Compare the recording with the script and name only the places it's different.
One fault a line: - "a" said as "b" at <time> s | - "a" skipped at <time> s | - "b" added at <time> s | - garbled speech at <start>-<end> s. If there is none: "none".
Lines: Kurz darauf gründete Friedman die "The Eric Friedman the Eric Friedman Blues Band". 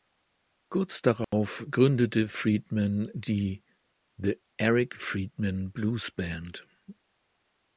- "the Eric Friedman" skipped at 5.7 s